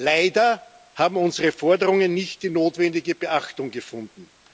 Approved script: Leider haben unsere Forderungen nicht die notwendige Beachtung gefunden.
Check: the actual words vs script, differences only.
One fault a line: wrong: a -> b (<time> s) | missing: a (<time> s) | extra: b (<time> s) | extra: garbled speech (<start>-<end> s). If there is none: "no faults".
no faults